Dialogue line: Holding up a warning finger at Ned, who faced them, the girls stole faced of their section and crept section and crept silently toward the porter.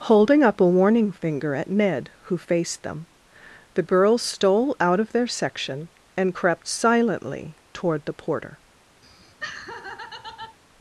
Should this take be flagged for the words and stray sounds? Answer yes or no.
yes